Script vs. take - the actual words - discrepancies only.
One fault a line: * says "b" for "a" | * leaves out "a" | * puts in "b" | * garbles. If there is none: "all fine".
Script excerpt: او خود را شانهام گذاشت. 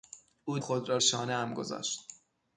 all fine